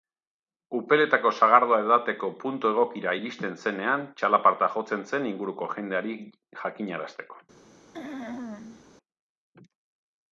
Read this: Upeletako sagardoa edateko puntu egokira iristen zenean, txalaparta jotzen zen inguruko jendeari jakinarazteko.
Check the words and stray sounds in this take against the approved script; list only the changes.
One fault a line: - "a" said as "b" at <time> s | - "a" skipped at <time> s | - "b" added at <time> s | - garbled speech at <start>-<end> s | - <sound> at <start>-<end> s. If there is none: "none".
- throat clearing at 7.9-8.8 s